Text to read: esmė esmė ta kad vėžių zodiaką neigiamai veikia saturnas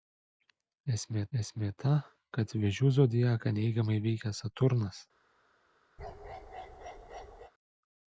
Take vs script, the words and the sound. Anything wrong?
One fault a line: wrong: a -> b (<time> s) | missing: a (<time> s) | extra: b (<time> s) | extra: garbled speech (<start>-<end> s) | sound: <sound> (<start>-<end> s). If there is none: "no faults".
sound: bark (6.0-7.5 s)